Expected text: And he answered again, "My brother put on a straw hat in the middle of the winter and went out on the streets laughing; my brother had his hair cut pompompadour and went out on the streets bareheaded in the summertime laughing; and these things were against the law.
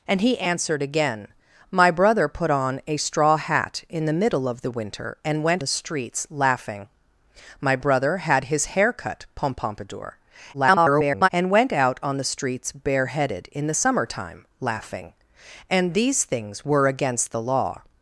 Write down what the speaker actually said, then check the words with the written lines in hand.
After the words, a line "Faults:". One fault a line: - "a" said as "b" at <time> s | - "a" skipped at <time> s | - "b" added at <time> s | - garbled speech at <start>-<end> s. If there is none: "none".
And he answered again, "My brother put on a straw hat in the middle of the winter and went the streets laughing; my brother had his hair cut pompompadour [garbled] and went out on the streets bareheaded in the summertime laughing; and these things were against the law.
Faults:
- "out on" skipped at 5.6 s
- garbled speech at 10.5-11.3 s